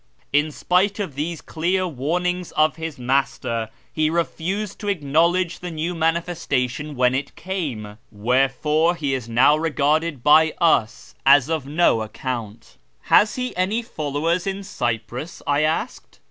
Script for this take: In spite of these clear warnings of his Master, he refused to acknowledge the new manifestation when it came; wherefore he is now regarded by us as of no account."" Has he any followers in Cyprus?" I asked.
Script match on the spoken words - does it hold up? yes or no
yes